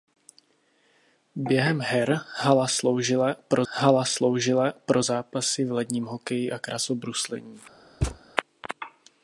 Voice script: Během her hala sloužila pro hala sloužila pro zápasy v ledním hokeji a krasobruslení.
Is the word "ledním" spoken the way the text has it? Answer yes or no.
yes